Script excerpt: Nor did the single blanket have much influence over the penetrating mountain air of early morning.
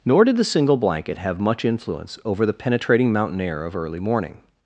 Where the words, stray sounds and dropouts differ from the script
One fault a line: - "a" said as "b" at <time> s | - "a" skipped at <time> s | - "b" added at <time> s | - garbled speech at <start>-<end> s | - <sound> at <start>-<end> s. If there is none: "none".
none